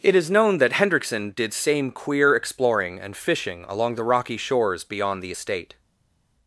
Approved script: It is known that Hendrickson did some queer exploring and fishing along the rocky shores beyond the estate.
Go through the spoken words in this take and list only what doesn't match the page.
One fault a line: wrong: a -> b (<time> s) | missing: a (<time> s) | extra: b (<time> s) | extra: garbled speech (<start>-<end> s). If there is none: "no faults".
wrong: some -> same (1.5 s)